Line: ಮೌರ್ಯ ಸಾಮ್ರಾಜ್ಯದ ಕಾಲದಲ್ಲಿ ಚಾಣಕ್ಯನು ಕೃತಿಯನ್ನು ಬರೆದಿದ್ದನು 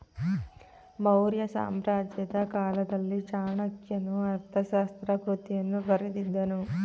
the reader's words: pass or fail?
fail